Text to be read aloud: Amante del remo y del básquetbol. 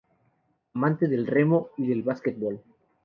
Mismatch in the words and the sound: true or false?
false